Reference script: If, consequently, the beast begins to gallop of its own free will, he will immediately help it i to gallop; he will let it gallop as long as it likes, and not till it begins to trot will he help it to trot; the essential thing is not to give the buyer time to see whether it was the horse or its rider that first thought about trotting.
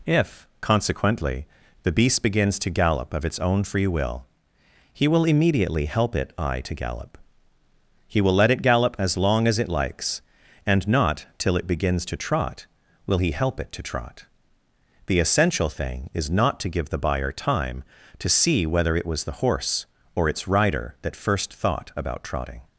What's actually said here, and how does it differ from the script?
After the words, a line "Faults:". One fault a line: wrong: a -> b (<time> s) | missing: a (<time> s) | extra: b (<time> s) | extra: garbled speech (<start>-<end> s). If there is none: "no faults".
If, consequently, the beast begins to gallop of its own free will, he will immediately help it i to gallop; he will let it gallop as long as it likes, and not till it begins to trot will he help it to trot; the essential thing is not to give the buyer time to see whether it was the horse or its rider that first thought about trotting.
Faults:
no faults